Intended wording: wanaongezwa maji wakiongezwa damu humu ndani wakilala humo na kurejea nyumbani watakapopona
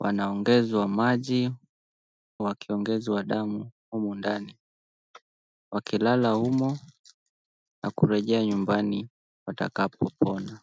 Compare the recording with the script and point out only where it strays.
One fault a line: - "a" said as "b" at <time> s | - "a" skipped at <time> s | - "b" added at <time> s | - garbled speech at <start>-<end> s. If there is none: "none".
none